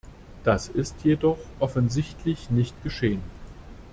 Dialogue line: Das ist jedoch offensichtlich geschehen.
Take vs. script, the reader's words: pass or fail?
fail